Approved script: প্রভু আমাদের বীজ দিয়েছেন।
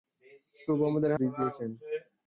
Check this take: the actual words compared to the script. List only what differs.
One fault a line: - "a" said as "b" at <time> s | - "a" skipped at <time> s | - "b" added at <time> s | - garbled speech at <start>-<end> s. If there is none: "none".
none